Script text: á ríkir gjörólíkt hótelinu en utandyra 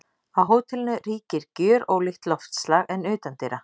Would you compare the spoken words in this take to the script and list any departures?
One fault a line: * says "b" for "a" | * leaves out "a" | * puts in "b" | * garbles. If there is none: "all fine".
* puts in "hótelinu"
* says "loftslag" for "hótelinu"